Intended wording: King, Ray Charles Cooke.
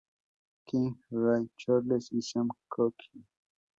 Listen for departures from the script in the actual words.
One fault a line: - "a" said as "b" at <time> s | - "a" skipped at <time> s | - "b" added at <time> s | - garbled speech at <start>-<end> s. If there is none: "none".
- "y Sam" added at 2.1 s